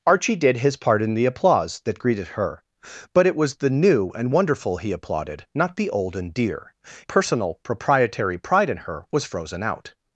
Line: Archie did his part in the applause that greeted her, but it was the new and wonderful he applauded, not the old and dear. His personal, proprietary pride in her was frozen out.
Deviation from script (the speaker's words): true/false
true